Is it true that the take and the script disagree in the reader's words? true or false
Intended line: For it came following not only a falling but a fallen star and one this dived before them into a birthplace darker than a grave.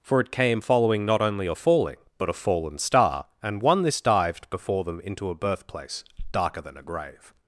false